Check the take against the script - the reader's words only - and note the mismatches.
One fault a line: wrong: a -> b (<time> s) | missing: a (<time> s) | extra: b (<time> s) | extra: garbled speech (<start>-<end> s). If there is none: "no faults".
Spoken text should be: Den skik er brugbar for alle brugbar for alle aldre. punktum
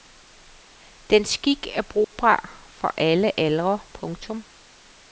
missing: brugbar for alle (3.4 s)